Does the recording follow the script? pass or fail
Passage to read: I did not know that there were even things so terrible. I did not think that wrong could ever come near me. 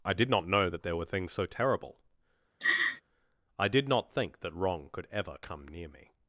fail